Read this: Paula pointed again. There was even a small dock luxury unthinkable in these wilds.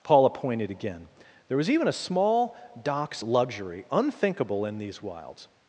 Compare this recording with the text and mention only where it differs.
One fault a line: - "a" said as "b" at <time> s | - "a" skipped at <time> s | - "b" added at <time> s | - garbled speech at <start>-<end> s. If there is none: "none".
- "dock" said as "docks" at 2.8 s